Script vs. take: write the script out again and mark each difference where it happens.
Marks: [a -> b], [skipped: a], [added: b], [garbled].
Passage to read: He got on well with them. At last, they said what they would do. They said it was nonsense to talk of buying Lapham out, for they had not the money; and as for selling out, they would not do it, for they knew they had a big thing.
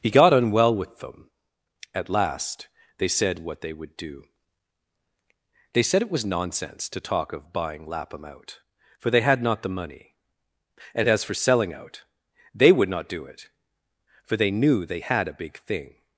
He got on well with them. At last, they said what they would do. They said it was nonsense to talk of buying Lapham out, for they had not the money; and as for selling out, they would not do it, for they knew they had a big thing.